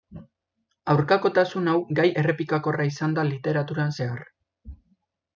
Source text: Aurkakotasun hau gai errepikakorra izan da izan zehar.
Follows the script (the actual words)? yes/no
no